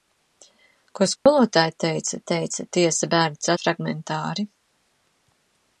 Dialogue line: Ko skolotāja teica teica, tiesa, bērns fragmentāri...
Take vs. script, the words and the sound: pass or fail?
fail